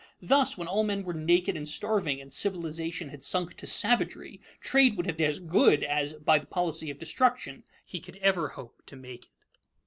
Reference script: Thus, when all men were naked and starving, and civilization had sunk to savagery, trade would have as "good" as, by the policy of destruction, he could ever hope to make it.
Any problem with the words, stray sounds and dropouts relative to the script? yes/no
no